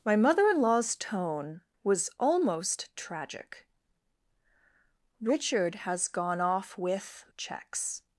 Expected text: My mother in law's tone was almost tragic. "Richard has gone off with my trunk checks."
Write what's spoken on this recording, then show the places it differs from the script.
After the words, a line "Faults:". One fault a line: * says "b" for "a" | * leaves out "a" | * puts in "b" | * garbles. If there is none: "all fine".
My mother in law's tone was almost tragic. "Richard has gone off with checks."
Faults:
* leaves out "my trunk"